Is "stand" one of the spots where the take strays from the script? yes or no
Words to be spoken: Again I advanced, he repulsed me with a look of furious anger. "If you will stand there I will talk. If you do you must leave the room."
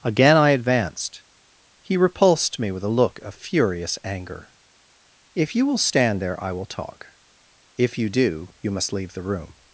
no